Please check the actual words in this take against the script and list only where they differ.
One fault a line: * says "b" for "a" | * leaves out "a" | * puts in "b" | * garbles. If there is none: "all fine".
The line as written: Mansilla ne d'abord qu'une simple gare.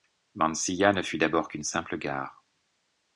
* puts in "fut"